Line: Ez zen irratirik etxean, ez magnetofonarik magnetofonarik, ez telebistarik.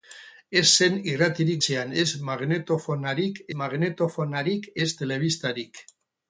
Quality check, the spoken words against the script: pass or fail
pass